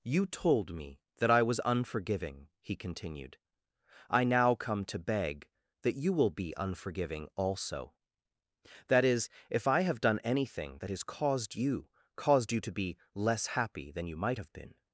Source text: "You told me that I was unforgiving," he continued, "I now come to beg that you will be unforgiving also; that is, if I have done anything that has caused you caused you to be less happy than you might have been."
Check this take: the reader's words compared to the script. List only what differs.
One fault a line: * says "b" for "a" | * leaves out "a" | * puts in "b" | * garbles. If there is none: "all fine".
all fine